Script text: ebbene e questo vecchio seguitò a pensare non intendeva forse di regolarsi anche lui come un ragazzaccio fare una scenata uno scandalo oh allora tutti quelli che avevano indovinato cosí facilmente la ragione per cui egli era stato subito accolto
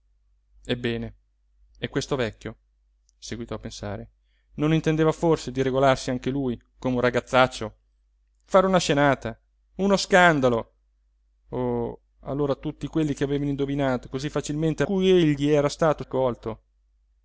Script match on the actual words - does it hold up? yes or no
no